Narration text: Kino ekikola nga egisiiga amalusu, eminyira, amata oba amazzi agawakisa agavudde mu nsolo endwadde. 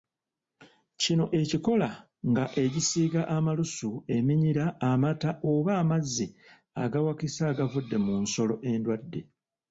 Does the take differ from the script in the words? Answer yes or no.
no